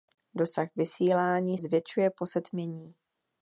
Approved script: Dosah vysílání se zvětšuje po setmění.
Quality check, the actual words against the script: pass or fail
fail